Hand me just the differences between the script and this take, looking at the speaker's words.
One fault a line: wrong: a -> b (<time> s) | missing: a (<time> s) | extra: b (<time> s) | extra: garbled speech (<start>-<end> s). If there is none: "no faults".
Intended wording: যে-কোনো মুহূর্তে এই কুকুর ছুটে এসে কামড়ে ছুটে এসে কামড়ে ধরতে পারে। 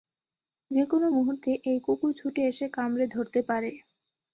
missing: ছুটে এসে কামড়ে (3.0 s)